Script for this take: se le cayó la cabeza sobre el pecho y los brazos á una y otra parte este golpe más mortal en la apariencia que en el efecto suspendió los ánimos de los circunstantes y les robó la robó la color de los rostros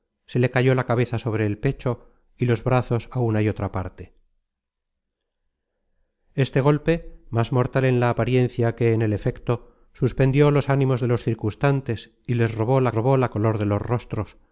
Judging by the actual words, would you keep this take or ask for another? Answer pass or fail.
pass